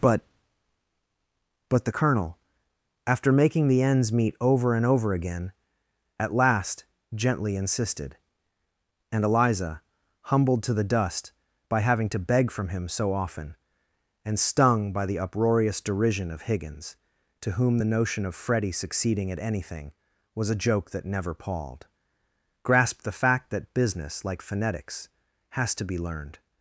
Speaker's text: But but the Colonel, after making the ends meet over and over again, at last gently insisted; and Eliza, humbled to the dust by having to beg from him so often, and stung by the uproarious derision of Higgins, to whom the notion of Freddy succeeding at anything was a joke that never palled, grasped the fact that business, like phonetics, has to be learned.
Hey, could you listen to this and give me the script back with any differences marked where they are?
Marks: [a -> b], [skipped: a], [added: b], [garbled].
But but the Colonel, after making the ends meet over and over again, at last gently insisted; and Eliza, humbled to the dust by having to beg from him so often, and stung by the uproarious derision of Higgins, to whom the notion of Freddy succeeding at anything was a joke that never palled, grasped the fact that business, like phonetics, has to be learned.